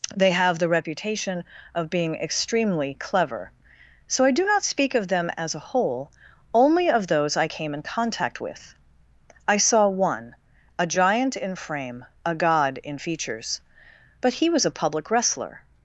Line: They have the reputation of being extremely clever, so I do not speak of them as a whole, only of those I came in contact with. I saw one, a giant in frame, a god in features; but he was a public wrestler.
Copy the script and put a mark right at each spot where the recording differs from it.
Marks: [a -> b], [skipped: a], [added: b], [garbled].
They have the reputation of being extremely clever, so I do not speak of them as a whole, only of those I came in contact with. I saw one, a giant in frame, a god in features; but he was a public wrestler.